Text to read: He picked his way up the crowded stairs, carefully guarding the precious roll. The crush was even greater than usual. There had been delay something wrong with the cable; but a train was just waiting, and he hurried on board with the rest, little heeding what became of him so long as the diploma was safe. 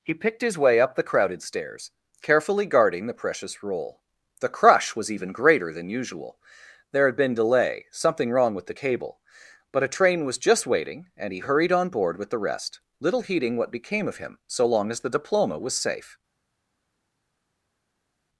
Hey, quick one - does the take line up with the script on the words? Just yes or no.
yes